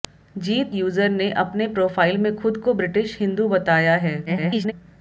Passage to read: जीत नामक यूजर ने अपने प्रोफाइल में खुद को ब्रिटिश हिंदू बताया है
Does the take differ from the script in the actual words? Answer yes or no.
yes